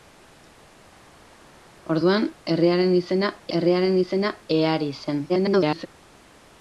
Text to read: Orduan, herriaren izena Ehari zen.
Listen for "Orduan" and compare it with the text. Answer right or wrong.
right